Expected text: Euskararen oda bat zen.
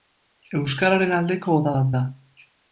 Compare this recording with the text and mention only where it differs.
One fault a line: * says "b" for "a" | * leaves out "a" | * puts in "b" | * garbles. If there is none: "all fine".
* puts in "aldeko"
* says "da" for "zen"